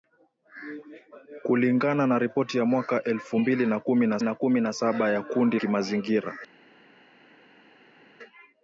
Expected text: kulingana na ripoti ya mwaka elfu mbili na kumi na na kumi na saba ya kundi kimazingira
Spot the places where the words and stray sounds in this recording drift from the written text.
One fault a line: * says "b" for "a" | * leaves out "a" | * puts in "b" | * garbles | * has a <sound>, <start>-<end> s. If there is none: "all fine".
all fine